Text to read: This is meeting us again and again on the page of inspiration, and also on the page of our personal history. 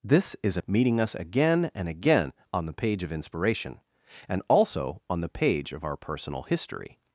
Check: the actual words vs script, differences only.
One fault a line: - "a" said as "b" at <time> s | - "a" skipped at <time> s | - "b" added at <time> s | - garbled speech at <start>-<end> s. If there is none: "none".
none